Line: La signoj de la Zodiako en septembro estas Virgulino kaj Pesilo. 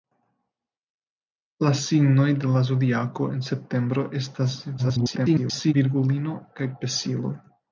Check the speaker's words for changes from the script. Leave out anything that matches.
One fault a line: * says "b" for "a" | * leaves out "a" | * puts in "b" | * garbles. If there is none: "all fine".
* garbles